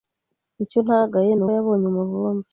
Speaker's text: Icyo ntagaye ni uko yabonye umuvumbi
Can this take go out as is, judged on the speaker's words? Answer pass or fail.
fail